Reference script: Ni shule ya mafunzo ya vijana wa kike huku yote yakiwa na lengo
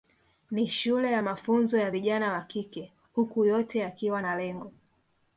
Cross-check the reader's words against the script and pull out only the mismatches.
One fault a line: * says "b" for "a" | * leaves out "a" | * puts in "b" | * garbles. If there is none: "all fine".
all fine